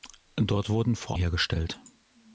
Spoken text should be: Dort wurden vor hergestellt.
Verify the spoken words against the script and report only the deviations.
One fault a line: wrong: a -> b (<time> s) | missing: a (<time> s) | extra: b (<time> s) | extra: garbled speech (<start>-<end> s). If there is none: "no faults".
no faults